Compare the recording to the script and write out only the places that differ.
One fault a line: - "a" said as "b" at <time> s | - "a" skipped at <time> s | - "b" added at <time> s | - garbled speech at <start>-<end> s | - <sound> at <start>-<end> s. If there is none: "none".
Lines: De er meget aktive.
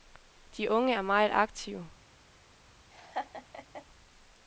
- "unge" added at 0.7 s
- laugh at 2.9-3.9 s